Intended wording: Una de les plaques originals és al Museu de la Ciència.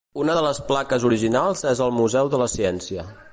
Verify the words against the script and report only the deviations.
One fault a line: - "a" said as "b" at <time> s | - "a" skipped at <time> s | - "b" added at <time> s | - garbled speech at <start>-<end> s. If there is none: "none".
none